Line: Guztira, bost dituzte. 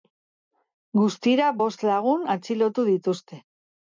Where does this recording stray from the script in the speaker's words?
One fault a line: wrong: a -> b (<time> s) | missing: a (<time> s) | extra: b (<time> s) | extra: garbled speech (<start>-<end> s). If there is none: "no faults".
extra: lagun atxilotu (1.9 s)